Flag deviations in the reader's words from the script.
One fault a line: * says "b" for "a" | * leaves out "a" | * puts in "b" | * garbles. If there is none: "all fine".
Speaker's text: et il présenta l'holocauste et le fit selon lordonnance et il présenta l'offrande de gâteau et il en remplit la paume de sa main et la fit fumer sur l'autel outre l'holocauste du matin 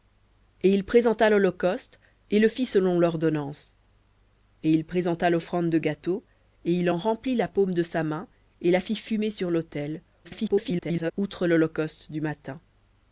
* garbles